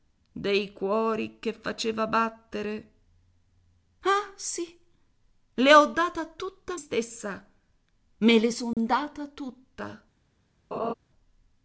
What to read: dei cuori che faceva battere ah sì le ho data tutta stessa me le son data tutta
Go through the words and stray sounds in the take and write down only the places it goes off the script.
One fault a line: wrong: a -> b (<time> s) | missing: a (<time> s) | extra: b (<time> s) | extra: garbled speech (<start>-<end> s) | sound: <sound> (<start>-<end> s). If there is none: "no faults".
sound: dropout (8.7-8.8 s)
sound: laugh (10.7-10.9 s)